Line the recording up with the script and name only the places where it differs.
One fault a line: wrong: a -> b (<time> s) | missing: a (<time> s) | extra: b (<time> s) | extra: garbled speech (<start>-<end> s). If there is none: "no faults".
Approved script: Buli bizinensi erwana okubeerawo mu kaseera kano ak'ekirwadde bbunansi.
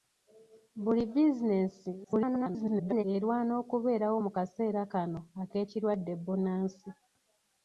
extra: garbled speech (2.0-3.0 s)